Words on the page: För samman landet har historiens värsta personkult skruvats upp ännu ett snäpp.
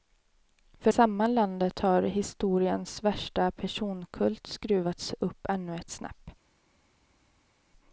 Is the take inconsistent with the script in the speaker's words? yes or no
no